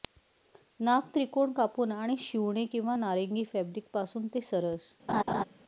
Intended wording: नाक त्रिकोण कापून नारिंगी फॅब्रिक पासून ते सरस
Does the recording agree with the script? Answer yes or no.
no